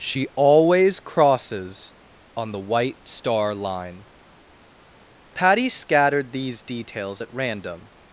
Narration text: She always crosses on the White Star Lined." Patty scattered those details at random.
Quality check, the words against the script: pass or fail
fail